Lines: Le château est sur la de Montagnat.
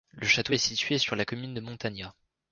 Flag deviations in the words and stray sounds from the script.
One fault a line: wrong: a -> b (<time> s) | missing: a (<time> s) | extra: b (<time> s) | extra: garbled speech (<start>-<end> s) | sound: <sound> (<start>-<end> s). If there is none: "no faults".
extra: situé (0.6 s)
extra: commune (1.2 s)